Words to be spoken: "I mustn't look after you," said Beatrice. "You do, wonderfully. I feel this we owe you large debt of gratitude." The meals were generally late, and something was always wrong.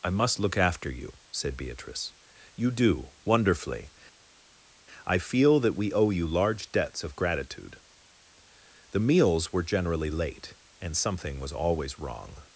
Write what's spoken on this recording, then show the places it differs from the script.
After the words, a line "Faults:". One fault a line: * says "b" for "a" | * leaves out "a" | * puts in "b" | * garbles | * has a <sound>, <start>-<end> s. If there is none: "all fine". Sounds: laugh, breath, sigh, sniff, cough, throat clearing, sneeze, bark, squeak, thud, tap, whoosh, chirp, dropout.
"I must look after you," said Beatrice. "You do, wonderfully. I feel that we owe you large debts of gratitude." The meals were generally late, and something was always wrong.
Faults:
* says "must" for "mustn't"
* says "that" for "this"
* says "debts" for "debt"